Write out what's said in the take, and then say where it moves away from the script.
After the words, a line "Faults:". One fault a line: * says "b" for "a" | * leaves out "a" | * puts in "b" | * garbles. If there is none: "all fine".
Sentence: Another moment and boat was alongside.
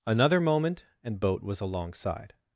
Another moment and boat was alongside.
Faults:
all fine